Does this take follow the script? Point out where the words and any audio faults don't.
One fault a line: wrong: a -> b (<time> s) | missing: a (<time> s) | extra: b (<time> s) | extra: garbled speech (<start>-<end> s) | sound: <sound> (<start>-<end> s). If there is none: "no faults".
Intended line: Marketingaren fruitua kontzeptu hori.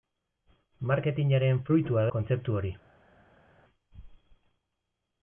no faults